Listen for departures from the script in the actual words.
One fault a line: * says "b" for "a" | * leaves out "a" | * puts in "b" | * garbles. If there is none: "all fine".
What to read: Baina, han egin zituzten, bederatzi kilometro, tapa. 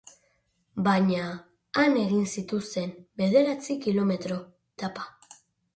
all fine